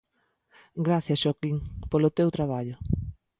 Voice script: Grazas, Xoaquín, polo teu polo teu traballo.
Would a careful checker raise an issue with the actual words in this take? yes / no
yes